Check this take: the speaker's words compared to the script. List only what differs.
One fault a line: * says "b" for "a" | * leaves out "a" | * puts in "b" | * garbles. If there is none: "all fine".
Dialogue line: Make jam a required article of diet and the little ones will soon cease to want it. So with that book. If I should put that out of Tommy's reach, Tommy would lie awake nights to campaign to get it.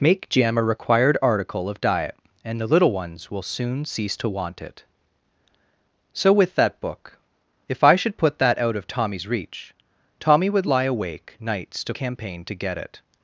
all fine